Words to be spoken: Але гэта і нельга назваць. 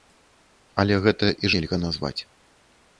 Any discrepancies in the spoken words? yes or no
no